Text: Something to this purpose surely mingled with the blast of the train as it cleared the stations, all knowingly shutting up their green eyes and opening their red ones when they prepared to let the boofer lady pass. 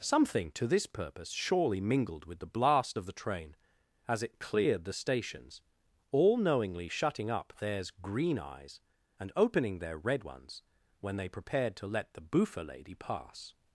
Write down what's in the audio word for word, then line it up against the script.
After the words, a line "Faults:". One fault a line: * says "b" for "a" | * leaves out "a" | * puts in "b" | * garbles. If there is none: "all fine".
Something to this purpose surely mingled with the blast of the train as it cleared the stations, all knowingly shutting up theirs green eyes and opening their red ones when they prepared to let the boofer lady pass.
Faults:
* says "theirs" for "their"